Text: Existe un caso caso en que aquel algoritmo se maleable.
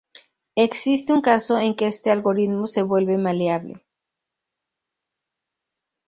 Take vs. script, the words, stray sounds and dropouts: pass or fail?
fail